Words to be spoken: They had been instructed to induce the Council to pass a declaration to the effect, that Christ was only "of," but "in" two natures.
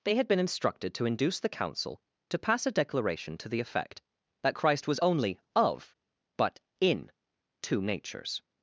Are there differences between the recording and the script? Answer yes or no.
no